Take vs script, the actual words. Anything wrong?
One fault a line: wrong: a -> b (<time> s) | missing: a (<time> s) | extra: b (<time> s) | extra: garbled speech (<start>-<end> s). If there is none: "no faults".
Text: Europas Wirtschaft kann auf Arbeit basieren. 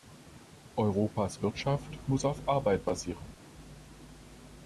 wrong: kann -> muss (2.1 s)